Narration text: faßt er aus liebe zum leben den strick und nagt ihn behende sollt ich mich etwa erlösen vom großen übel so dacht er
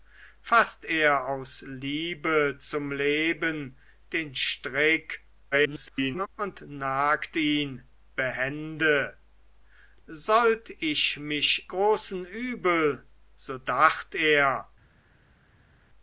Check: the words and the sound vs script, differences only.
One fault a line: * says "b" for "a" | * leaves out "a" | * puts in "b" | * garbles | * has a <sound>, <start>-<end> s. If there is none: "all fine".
* garbles
* leaves out "etwa erlösen vom"